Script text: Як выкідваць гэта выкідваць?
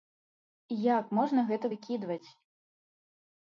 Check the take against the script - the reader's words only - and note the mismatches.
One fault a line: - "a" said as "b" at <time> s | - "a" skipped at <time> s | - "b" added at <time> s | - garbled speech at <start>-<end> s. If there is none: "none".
- "выкідваць" said as "можна" at 1.2 s